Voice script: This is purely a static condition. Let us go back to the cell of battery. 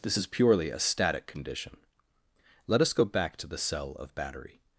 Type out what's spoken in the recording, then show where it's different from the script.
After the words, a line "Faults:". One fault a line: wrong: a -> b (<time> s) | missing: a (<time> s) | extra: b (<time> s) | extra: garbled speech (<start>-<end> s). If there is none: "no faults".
This is purely a static condition. Let us go back to the cell of battery.
Faults:
no faults